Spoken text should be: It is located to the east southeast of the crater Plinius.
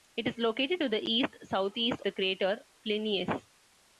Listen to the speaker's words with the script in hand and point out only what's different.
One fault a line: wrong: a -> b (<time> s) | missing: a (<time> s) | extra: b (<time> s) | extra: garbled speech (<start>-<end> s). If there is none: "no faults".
missing: of (2.0 s)